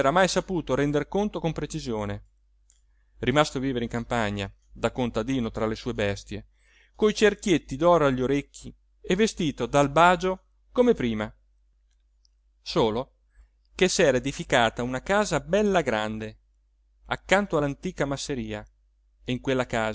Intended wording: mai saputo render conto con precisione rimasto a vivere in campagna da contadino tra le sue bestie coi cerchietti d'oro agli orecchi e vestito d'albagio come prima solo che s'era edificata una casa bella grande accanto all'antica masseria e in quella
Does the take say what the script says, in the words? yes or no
yes